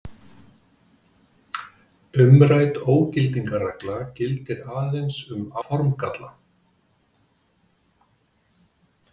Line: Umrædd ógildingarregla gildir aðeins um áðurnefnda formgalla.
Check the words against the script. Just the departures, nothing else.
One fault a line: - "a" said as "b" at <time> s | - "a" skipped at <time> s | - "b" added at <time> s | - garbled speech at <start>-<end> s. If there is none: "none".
- "áðurnefnda" skipped at 5.5 s